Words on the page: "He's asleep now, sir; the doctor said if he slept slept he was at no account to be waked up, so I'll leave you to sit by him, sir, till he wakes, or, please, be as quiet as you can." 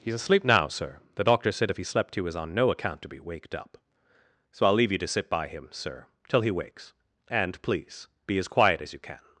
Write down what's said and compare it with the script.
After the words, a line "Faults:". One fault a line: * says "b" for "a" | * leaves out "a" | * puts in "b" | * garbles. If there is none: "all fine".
"He's asleep now, sir; the doctor said if he slept he was on no account to be waked up, so I'll leave you to sit by him, sir, till he wakes, and, please, be as quiet as you can."
Faults:
* leaves out "slept"
* says "on" for "at"
* says "and" for "or"